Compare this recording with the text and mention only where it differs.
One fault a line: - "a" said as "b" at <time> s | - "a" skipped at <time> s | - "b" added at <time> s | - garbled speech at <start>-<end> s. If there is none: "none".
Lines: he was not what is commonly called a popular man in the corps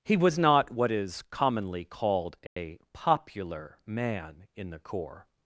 none